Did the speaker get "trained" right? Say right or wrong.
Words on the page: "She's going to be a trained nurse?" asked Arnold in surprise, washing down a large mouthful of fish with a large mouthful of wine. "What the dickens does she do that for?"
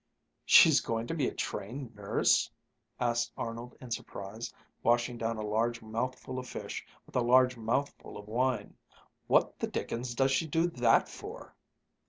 right